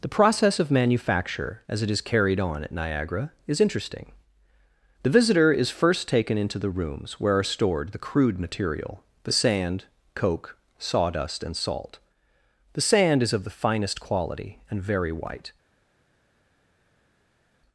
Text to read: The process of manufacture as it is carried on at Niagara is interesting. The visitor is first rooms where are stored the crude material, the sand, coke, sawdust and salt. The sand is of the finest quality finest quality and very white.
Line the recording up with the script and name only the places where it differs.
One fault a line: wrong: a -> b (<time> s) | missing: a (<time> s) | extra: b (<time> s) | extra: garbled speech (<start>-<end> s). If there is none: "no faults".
extra: taken into the (6.1 s)
missing: finest quality (14.6 s)